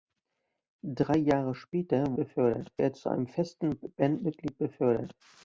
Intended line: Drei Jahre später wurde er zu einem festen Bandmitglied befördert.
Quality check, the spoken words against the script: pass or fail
fail